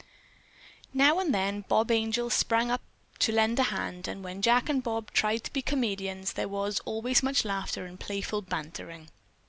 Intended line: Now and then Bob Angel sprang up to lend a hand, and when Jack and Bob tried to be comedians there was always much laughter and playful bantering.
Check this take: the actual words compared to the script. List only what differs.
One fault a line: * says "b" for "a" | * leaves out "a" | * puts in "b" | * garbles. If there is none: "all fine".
all fine